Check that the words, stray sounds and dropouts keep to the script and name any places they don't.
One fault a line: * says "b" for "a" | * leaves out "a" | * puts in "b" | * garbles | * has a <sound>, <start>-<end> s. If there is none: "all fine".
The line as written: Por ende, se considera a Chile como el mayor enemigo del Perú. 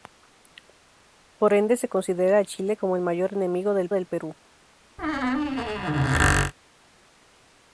* puts in "del"
* has a squeak, 5.0-6.5 s